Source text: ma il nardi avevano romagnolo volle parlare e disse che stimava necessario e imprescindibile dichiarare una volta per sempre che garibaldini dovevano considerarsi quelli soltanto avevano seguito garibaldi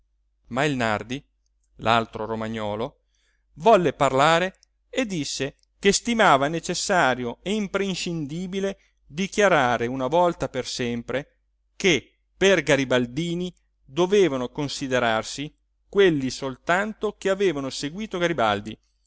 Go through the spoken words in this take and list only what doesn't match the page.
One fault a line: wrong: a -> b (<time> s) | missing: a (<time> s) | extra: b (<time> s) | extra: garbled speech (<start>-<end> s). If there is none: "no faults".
wrong: avevano -> l'altro (1.8 s)
extra: per (12.3 s)
extra: che (17.2 s)